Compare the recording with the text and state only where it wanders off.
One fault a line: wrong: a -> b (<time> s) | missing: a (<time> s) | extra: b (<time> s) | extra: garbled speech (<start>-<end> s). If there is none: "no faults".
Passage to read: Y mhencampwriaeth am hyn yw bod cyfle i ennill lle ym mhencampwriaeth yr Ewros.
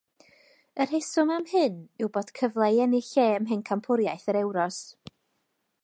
wrong: mhencampwriaeth -> rheswm (0.9 s)